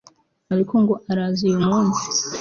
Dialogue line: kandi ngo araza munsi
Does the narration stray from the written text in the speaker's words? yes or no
yes